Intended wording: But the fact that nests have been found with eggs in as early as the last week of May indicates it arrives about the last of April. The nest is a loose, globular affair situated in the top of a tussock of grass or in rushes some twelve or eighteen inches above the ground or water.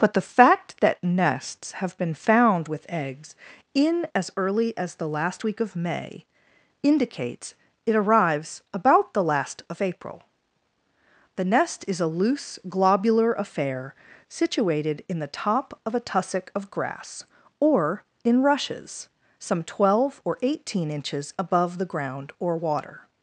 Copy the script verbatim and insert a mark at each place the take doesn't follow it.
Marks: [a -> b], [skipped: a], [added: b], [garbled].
But the fact that nests have been found with eggs in as early as the last week of May indicates it arrives about the last of April. The nest is a loose, globular affair situated in the top of a tussock of grass or in rushes some twelve or eighteen inches above the ground or water.